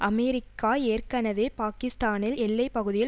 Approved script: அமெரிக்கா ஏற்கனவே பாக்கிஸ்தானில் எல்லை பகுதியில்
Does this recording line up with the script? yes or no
yes